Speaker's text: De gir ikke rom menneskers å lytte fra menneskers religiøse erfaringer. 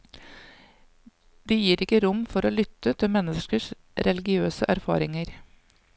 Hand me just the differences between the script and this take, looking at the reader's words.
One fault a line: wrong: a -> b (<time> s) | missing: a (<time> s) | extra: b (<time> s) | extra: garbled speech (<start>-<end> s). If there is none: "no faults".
wrong: menneskers -> for (2.3 s)
wrong: fra -> til (3.0 s)